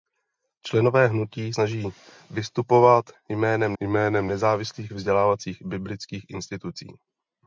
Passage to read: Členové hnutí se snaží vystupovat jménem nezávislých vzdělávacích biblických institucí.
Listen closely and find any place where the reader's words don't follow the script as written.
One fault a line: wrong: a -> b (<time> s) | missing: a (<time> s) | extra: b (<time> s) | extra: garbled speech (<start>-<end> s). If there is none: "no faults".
missing: se (1.5 s)
extra: jménem (3.8 s)